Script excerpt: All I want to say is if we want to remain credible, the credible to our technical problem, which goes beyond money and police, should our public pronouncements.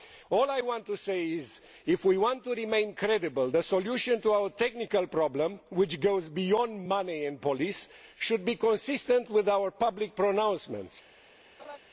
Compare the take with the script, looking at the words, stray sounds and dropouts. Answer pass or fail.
fail